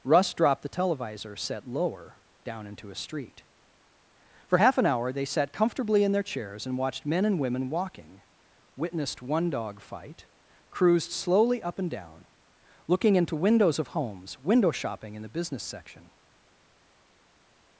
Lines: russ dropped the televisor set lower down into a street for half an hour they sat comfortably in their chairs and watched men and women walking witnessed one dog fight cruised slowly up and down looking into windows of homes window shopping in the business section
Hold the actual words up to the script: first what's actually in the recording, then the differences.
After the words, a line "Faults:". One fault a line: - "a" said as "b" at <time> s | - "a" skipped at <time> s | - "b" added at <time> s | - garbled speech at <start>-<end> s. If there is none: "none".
russ dropped the televisor set lower down into a street for half an hour they sat comfortably in their chairs and watched men and women walking witnessed one dog fight cruised slowly up and down looking into windows of homes window shopping in the business section
Faults:
none